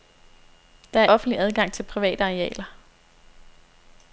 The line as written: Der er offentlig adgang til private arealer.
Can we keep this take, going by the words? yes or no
yes